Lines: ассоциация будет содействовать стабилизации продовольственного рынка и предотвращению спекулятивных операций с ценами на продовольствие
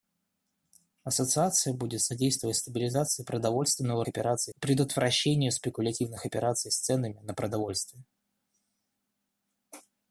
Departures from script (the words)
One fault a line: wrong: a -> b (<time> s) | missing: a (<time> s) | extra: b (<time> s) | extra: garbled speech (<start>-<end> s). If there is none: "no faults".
wrong: рынка -> операций (4.1 s)